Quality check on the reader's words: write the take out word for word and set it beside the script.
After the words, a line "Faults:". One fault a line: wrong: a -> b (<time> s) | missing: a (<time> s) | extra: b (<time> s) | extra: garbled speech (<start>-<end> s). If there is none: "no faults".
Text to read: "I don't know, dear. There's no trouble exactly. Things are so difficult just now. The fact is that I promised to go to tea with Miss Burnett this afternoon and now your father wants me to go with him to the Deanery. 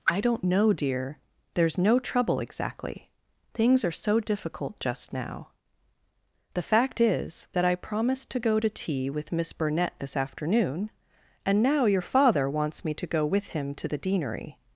"I don't know, dear. There's no trouble exactly. Things are so difficult just now. The fact is that I promised to go to tea with Miss Burnett this afternoon and now your father wants me to go with him to the Deanery.
Faults:
no faults